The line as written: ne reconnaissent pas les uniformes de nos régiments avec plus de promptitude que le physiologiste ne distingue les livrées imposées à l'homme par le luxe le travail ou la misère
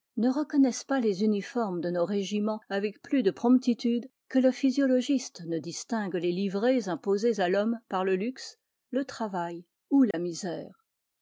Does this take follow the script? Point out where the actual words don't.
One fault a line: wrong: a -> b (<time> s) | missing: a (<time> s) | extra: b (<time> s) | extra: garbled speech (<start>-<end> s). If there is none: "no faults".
no faults